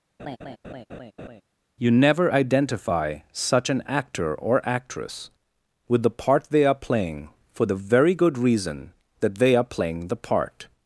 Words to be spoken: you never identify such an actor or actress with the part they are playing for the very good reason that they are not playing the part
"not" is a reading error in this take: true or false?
true